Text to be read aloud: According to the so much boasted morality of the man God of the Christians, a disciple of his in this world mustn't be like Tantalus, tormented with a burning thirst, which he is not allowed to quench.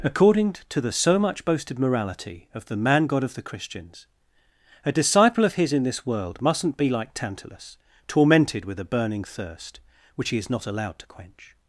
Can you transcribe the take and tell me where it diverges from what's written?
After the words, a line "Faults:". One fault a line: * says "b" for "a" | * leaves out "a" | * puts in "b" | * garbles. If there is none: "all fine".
According to the so much boasted morality of the man God of the Christians, a disciple of his in this world mustn't be like Tantalus, tormented with a burning thirst, which he is not allowed to quench.
Faults:
all fine